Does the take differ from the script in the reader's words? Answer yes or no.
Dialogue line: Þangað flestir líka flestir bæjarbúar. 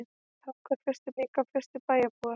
no